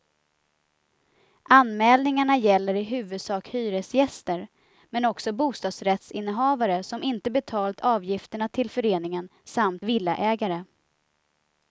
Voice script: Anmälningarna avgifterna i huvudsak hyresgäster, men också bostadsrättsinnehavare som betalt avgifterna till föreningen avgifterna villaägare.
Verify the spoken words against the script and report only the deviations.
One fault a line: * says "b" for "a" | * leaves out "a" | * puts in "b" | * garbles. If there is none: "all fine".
* says "gäller" for "avgifterna"
* puts in "inte"
* says "samt" for "avgifterna"